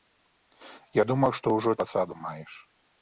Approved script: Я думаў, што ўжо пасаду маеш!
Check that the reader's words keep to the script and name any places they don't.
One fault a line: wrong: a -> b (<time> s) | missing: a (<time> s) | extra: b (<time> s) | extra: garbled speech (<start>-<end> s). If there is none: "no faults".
no faults